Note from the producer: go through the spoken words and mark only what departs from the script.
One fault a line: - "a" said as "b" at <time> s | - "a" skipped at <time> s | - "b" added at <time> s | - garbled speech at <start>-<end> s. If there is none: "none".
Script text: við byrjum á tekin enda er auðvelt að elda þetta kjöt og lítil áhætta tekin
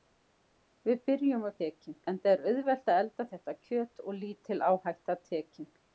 none